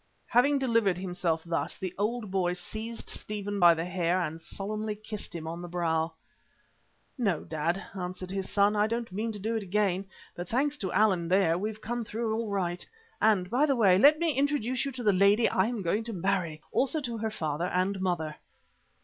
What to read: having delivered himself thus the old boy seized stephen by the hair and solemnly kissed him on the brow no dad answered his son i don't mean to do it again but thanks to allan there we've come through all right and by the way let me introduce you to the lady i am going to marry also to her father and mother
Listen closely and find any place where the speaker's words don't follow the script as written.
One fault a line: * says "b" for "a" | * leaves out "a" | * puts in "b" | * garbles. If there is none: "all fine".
all fine